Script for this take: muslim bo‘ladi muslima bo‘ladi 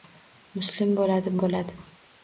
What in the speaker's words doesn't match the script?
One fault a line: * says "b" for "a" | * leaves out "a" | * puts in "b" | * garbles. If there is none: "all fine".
* leaves out "muslima"